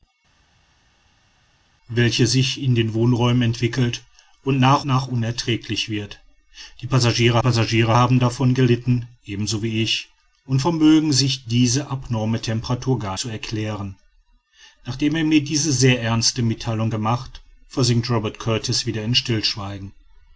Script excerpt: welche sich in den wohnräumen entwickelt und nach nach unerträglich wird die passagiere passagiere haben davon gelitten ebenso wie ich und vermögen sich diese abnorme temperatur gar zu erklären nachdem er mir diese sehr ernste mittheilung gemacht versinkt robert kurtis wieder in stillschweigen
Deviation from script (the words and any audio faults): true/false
false